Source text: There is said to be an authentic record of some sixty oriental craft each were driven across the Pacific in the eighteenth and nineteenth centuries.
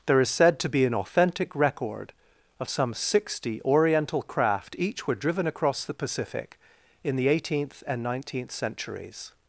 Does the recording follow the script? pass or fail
pass